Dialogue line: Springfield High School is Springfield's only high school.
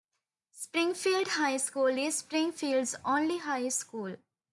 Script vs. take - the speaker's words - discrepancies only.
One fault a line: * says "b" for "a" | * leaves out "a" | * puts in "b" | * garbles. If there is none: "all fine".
all fine